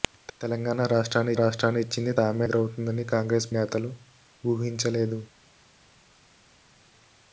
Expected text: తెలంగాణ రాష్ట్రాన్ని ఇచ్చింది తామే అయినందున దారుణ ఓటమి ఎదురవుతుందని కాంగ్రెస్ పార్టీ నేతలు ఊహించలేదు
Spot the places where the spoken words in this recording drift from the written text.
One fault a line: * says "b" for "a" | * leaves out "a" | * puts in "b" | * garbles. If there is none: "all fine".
* puts in "రాష్ట్రాన్ని"
* leaves out "అయినందున దారుణ ఓటమి"
* leaves out "పార్టీ"